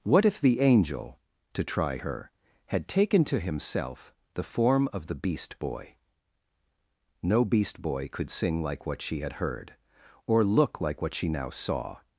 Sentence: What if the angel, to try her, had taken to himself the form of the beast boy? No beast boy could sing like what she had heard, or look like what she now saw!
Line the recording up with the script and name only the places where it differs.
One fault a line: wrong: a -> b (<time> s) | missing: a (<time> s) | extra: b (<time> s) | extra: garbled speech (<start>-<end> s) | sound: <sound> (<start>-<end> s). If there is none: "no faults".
no faults